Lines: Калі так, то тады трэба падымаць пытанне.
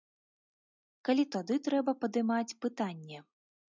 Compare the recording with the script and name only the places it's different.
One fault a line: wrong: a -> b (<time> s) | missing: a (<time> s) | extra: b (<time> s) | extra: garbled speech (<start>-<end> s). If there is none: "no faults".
missing: так то (1.2 s)